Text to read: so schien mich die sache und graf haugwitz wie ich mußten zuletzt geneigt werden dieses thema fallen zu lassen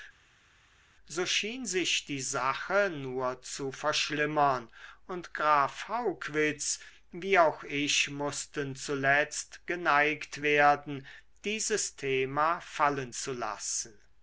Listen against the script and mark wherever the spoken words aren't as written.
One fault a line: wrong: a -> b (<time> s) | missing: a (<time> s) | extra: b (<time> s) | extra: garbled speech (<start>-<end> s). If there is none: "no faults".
wrong: mich -> sich (1.7 s)
extra: nur zu verschlimmern (2.9 s)
extra: auch (7.4 s)